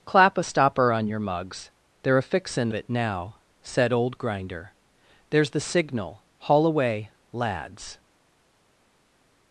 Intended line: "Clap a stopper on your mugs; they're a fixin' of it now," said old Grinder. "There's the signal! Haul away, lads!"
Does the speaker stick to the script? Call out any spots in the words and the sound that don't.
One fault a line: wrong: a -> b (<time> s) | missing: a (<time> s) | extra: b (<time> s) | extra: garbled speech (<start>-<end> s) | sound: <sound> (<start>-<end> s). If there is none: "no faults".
missing: of (2.7 s)